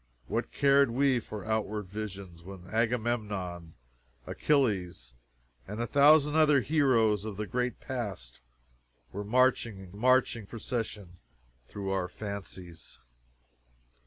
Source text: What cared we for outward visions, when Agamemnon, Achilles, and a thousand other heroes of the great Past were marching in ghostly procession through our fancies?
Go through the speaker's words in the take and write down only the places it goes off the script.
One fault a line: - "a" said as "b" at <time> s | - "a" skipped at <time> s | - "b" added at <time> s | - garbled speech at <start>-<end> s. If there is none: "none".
- "ghostly" said as "marching" at 9.9 s